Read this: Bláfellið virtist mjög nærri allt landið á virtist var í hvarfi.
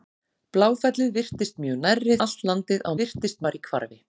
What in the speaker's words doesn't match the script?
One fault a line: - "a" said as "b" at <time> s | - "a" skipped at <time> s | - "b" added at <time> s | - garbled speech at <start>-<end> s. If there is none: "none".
none